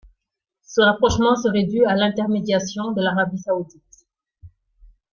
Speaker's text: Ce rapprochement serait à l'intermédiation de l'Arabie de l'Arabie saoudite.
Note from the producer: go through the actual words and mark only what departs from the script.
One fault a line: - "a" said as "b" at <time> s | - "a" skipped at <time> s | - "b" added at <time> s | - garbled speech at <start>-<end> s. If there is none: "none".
- "dû" added at 1.6 s
- "de l'Arabie" skipped at 3.4 s